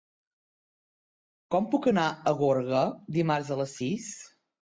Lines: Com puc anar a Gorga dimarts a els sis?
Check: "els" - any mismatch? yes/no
yes